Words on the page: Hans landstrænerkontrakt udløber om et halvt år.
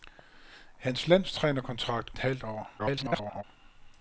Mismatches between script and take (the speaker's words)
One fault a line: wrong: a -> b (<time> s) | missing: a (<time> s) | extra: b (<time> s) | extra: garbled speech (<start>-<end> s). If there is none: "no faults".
missing: udløber om (2.1 s)
extra: garbled speech (2.8-3.4 s)